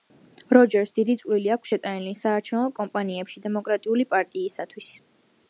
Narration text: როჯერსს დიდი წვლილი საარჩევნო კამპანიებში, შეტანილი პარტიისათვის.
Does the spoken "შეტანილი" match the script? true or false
false